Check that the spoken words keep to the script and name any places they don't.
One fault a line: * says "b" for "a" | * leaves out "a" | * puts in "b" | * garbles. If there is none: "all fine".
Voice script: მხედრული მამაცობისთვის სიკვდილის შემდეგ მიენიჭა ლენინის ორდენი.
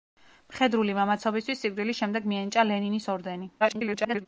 * garbles